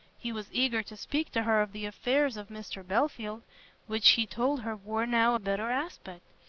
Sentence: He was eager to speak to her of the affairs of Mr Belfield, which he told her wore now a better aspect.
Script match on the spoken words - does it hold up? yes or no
yes